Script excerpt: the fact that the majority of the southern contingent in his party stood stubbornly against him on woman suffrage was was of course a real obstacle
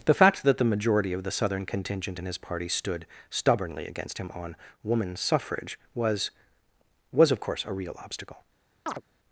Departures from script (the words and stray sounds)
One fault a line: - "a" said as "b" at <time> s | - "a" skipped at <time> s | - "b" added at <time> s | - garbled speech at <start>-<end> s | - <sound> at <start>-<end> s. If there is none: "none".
- chirp at 8.9-9.0 s